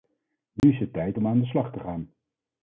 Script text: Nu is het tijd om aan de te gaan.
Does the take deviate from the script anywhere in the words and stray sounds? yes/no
yes